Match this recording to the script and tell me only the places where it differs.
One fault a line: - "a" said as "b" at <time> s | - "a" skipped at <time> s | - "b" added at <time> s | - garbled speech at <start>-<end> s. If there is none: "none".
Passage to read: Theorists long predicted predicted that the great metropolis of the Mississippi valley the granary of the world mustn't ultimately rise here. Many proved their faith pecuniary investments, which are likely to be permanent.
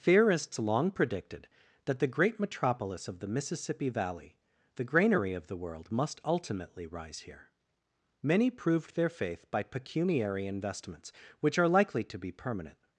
- "predicted" skipped at 1.5 s
- "mustn't" said as "must" at 5.9 s
- "by" added at 9.5 s